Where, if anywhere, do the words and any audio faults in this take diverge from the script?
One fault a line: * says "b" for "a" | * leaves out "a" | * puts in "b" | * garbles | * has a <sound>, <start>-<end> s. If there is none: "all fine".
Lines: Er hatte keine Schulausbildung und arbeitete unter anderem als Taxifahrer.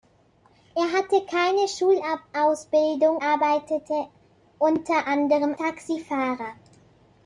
* leaves out "und"
* leaves out "als"